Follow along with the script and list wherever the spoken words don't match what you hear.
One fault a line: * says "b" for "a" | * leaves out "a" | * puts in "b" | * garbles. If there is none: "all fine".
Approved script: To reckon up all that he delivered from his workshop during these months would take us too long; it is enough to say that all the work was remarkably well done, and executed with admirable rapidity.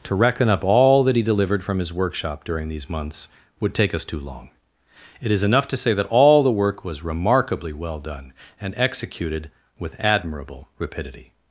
all fine